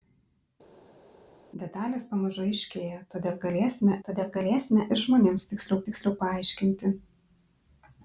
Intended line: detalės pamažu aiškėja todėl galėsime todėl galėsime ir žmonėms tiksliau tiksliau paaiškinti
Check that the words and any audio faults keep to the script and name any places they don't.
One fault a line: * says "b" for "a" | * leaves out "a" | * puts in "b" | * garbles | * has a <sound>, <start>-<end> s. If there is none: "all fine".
all fine